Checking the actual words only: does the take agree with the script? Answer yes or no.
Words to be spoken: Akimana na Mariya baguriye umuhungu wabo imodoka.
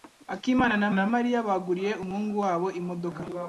no